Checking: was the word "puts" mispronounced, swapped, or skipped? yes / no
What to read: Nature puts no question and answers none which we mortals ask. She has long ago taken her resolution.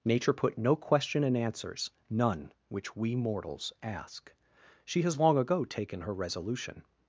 yes